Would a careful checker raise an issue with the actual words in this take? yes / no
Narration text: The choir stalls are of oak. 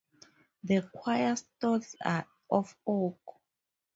no